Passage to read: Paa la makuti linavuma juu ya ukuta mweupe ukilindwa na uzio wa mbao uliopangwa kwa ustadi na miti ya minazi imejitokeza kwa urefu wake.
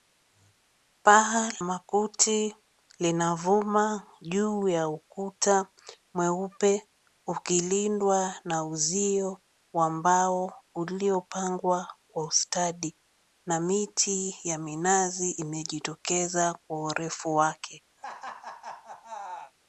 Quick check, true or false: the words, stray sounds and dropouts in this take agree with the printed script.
false